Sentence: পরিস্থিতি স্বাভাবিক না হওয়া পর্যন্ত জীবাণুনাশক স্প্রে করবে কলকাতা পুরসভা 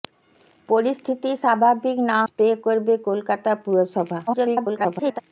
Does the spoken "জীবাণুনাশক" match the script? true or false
false